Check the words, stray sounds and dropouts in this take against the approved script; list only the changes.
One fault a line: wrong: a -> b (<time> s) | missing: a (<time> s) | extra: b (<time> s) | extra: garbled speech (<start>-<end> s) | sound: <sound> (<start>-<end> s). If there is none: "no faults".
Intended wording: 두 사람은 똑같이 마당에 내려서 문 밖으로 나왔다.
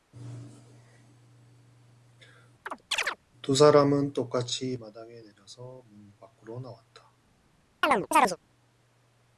sound: chirp (2.7-3.2 s)
sound: chirp (7.8-8.4 s)